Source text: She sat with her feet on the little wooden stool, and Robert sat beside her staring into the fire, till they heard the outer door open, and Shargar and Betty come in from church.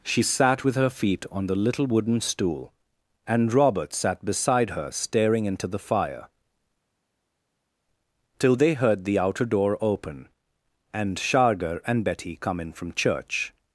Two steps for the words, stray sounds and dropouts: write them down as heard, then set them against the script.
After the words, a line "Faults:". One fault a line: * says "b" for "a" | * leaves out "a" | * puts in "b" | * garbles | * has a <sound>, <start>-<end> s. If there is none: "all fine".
She sat with her feet on the little wooden stool, and Robert sat beside her staring into the fire, till they heard the outer door open, and Shargar and Betty come in from church.
Faults:
all fine